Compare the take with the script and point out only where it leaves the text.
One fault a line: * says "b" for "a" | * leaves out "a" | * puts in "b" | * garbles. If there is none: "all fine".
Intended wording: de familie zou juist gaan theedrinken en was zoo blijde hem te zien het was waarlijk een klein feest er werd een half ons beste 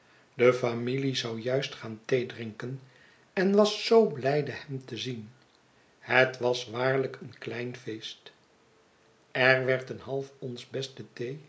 all fine